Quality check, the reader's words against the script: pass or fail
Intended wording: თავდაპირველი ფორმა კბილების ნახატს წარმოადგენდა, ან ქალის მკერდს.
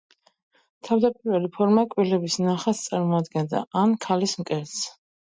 pass